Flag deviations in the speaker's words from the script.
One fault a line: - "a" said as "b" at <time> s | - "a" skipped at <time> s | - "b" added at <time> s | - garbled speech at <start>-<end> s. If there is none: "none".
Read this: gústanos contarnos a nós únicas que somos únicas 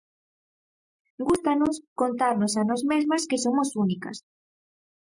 - "únicas" said as "mesmas" at 2.9 s